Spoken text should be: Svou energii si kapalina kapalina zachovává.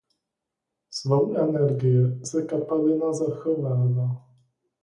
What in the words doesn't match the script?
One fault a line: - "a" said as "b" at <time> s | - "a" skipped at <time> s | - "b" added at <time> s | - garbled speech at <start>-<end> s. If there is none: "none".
- "kapalina" skipped at 3.1 s